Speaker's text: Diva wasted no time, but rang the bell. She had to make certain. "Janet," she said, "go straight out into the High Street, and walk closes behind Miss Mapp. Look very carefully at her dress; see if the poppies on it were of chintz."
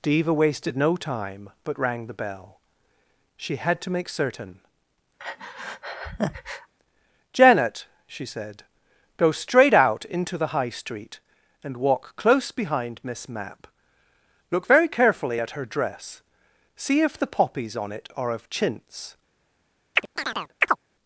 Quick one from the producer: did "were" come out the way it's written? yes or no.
no